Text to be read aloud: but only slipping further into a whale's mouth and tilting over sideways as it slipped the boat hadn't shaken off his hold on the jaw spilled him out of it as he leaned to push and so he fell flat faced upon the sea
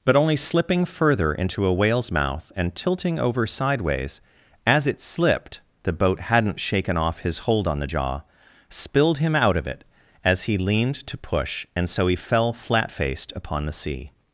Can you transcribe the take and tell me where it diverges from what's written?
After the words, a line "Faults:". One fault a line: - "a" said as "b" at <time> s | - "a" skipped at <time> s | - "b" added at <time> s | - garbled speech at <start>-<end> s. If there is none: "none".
but only slipping further into a whale's mouth and tilting over sideways as it slipped the boat hadn't shaken off his hold on the jaw spilled him out of it as he leaned to push and so he fell flat faced upon the sea
Faults:
none